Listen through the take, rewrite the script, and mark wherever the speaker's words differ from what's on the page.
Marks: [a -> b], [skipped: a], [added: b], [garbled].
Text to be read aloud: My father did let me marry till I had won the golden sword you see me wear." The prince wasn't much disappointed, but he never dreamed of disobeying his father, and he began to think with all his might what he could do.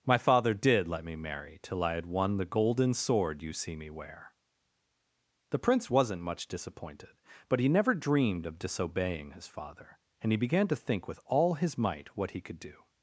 My father did let me marry till I had won the golden sword you see me wear." The prince wasn't much disappointed, but he never dreamed of disobeying his father, and he began to think with all his might what he could do.